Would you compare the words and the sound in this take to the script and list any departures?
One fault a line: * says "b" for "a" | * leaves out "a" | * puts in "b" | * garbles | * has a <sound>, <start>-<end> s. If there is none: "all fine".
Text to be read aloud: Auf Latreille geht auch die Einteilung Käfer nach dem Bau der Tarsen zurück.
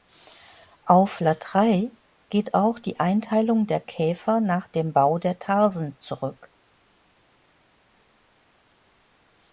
* puts in "der"